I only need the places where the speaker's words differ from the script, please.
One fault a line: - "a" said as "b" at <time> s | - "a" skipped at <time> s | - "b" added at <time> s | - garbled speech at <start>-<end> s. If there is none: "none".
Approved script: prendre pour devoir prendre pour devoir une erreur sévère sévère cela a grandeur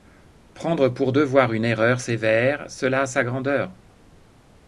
- "prendre pour devoir" skipped at 1.5 s
- "sévère" skipped at 2.7 s
- "sa" added at 3.1 s